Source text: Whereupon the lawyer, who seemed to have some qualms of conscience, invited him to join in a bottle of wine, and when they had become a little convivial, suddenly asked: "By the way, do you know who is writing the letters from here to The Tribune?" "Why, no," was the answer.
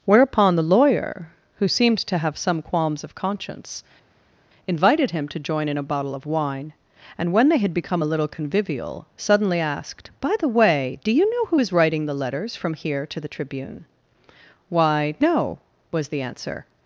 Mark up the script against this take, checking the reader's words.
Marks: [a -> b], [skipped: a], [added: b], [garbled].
Whereupon the lawyer, who seemed to have some qualms of conscience, invited him to join in a bottle of wine, and when they had become a little convivial, suddenly asked: "By the way, do you know who is writing the letters from here to The Tribune?" "Why, no," was the answer.